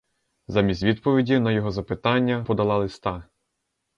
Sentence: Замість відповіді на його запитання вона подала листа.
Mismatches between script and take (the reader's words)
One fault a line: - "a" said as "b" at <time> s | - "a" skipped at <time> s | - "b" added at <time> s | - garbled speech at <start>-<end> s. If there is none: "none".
- "вона" skipped at 2.5 s